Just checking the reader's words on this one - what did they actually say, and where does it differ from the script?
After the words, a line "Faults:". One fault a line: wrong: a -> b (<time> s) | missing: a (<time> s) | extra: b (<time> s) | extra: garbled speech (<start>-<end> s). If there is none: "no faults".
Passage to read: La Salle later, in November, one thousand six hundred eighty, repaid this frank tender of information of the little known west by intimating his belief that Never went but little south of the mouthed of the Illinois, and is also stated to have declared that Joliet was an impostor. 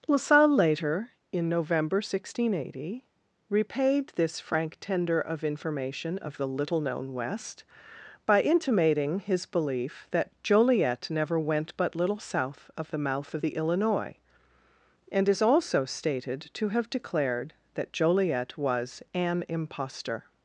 La Salle later, in November, one thousand six hundred eighty, repaid this frank tender of information of the little known west by intimating his belief that Joliet never went but little south of the mouth of the Illinois, and is also stated to have declared that Joliet was an impostor.
Faults:
extra: Joliet (10.4 s)
wrong: mouthed -> mouth (13.0 s)